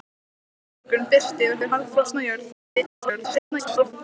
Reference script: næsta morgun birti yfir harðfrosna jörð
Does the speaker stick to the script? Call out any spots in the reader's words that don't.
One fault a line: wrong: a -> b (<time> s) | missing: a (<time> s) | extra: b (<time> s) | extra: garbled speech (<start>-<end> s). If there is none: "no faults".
extra: yfir (1.6 s)
extra: garbled speech (2.5-3.9 s)